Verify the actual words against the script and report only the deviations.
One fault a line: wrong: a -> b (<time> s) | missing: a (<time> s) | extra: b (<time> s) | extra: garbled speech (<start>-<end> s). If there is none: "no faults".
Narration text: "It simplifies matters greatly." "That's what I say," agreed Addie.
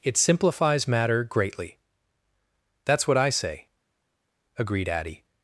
wrong: matters -> matter (0.9 s)